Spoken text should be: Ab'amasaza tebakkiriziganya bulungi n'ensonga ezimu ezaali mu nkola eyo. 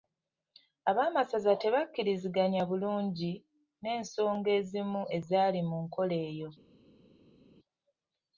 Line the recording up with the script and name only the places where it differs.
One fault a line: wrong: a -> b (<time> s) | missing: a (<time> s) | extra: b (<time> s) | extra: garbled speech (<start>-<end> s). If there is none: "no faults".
no faults